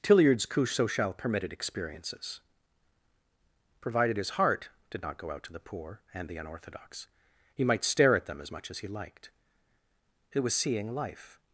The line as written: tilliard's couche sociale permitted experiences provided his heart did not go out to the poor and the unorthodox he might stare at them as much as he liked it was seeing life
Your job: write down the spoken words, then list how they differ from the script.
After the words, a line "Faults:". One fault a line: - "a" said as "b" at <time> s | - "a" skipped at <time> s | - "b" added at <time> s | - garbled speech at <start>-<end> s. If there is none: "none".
tilliard's couche sociale permitted experiences provided his heart did not go out to the poor and the unorthodox he might stare at them as much as he liked it was seeing life
Faults:
none